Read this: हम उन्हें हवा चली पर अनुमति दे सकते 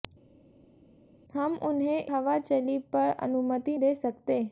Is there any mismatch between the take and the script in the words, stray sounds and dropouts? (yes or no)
no